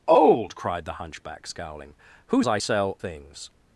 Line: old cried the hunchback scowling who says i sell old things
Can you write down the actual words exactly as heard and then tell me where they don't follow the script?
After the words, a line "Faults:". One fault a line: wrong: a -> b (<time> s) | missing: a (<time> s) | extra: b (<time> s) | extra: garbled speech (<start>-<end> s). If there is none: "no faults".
old cried the hunchback scowling who i sell things
Faults:
missing: says (2.4 s)
missing: old (3.0 s)